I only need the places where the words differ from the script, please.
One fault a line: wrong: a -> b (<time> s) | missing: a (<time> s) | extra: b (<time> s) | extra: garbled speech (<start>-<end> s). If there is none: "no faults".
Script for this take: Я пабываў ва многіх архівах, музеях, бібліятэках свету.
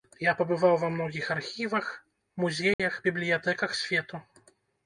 no faults